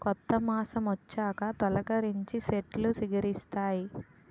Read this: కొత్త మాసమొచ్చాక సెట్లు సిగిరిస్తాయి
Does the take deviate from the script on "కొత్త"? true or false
false